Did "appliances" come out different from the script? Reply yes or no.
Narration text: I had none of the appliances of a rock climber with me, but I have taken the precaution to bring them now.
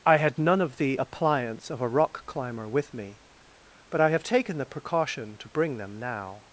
yes